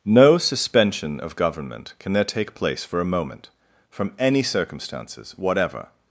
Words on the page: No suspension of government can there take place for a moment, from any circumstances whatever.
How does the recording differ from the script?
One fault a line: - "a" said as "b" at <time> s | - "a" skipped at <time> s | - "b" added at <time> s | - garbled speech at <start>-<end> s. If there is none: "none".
none